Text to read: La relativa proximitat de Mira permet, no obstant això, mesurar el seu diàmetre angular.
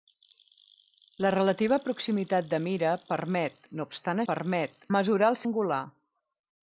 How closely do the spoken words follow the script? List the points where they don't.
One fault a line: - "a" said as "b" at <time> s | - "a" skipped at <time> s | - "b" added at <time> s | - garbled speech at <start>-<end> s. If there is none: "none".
- "això" said as "permet" at 4.3 s
- "seu diàmetre" skipped at 5.4 s